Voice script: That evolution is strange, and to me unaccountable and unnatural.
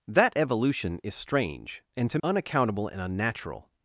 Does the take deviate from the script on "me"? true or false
true